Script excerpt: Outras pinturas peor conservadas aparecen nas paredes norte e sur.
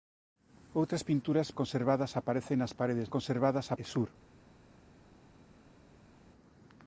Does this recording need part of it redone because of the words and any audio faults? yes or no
yes